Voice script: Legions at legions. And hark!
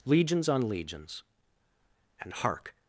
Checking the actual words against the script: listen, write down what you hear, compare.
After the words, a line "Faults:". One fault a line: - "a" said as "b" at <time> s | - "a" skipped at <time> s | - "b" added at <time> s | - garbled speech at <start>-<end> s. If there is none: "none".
Legions on legions. And hark!
Faults:
- "at" said as "on" at 0.5 s